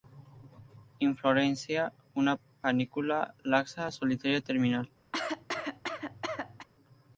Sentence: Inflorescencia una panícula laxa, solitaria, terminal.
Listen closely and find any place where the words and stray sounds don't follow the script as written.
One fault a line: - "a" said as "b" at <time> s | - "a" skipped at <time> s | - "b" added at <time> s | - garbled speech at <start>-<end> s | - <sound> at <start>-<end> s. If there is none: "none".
- cough at 5.1-6.7 s